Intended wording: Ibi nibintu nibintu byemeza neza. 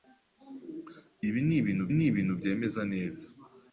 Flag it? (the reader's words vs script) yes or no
no